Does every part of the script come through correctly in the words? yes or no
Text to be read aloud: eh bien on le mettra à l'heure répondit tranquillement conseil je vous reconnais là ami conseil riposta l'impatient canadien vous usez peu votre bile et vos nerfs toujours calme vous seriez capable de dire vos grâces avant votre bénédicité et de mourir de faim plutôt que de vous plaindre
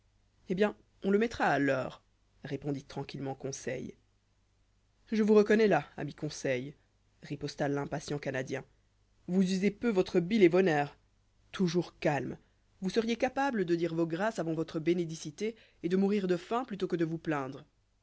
yes